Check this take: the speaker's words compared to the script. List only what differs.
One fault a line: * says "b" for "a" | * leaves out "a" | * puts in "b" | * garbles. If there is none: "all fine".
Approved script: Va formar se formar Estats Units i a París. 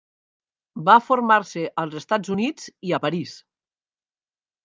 * says "als" for "formar"